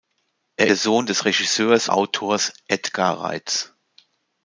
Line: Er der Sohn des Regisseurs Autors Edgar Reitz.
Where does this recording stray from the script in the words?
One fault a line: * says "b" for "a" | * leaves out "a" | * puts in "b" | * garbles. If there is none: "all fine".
all fine